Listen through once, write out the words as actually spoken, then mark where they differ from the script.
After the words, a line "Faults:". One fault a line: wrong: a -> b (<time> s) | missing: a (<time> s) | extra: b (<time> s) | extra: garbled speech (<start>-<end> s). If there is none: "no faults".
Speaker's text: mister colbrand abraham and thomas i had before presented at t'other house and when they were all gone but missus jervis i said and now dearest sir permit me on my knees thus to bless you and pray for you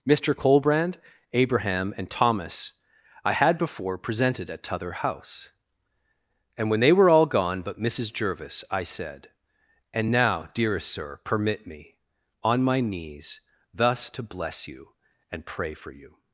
mister colbrand abraham and thomas i had before presented at t'other house and when they were all gone but missus jervis i said and now dearest sir permit me on my knees thus to bless you and pray for you
Faults:
no faults